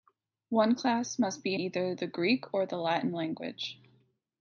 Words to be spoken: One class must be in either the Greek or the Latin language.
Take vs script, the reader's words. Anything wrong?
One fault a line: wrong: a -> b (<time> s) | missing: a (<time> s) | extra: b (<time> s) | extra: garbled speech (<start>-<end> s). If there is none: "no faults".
missing: in (1.6 s)